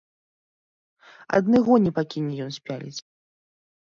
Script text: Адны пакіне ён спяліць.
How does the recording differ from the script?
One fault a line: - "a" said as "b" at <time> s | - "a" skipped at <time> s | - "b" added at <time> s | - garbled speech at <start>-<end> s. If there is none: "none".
- "гоні" added at 1.7 s